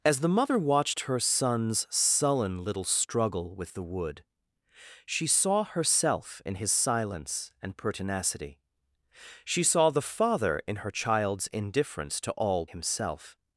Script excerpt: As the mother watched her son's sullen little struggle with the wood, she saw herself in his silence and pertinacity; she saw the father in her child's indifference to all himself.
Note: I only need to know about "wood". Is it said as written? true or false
true